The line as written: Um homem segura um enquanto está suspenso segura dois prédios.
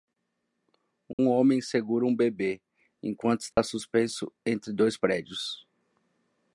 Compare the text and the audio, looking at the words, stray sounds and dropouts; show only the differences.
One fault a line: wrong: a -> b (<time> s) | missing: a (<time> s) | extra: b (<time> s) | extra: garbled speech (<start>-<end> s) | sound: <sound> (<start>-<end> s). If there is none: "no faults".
sound: dropout (1.1-1.2 s)
extra: bebê (2.1 s)
sound: dropout (3.5-3.6 s)
wrong: segura -> entre (4.4 s)